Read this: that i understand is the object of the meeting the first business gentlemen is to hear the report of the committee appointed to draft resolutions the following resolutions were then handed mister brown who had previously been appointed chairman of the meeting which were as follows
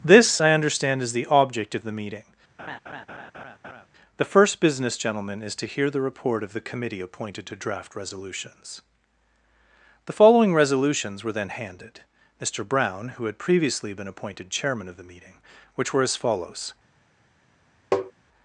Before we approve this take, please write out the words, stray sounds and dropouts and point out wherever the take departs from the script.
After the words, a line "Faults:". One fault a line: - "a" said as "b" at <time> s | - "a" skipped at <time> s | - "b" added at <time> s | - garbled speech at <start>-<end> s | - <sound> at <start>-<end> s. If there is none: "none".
this i understand is the object of the meeting the first business gentlemen is to hear the report of the committee appointed to draft resolutions the following resolutions were then handed mister brown who had previously been appointed chairman of the meeting which were as follows
Faults:
- "that" said as "this" at 0.0 s
- laugh at 2.6-3.9 s
- tap at 17.9-18.1 s